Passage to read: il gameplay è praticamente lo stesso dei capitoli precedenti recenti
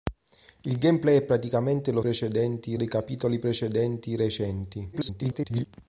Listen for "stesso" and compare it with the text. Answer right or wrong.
wrong